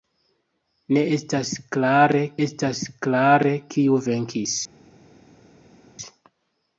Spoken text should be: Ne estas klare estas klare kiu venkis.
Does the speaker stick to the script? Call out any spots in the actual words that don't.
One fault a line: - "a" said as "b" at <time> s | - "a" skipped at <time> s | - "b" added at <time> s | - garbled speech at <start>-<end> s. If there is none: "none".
none